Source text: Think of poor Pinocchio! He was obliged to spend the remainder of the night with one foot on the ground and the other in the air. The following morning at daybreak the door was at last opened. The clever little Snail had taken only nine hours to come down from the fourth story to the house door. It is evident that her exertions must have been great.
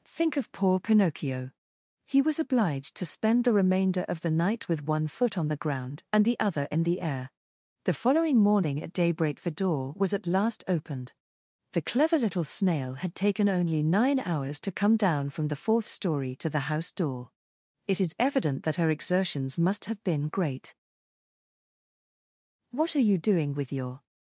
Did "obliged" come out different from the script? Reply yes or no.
no